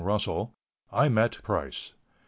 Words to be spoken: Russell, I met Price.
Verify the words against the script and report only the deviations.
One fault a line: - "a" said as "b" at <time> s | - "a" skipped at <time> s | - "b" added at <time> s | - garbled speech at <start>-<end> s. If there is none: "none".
none